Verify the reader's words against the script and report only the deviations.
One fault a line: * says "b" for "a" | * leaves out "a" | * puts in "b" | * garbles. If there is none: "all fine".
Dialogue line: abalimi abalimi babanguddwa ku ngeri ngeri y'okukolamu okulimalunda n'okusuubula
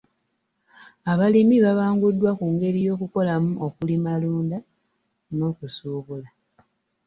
* leaves out "abalimi"
* leaves out "ngeri"